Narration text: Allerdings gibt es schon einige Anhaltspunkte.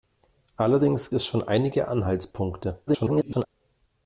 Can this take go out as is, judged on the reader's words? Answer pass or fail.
fail